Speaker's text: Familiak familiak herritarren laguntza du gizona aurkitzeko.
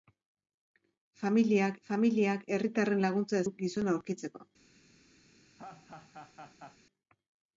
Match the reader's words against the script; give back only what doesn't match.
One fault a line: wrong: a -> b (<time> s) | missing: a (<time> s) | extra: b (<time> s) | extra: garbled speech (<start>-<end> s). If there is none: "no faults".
no faults